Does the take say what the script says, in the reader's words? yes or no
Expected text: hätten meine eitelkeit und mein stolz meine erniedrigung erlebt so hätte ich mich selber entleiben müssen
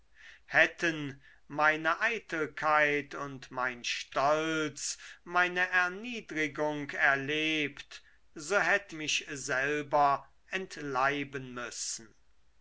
no